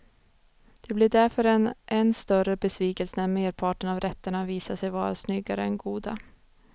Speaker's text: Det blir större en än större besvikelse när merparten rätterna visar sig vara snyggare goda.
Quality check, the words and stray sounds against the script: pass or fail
fail